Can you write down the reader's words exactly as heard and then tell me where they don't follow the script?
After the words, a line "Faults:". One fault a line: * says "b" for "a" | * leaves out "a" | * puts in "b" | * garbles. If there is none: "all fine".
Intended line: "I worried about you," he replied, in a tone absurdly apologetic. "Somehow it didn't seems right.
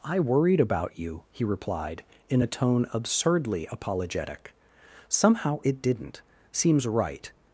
"I worried about you," he replied, in a tone absurdly apologetic. "Somehow it didn't seems right.
Faults:
all fine